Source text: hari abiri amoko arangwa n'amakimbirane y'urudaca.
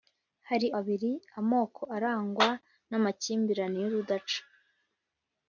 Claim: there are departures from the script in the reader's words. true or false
false